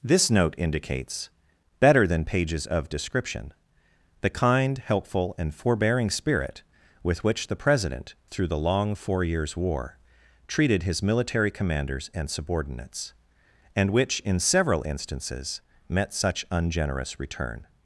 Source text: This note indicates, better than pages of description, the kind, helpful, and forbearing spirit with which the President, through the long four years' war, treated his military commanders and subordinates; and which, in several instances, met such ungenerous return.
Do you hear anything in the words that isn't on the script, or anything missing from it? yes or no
no